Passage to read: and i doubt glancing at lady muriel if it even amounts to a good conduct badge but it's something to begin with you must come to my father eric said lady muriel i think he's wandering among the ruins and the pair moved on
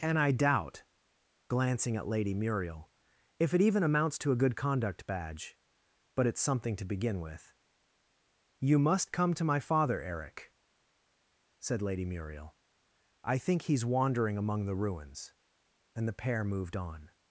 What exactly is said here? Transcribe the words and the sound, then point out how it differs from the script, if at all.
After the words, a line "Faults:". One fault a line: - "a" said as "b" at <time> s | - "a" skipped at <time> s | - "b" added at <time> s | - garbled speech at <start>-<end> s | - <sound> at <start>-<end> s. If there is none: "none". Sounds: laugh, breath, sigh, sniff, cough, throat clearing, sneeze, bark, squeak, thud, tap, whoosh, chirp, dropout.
and i doubt glancing at lady muriel if it even amounts to a good conduct badge but it's something to begin with you must come to my father eric said lady muriel i think he's wandering among the ruins and the pair moved on
Faults:
none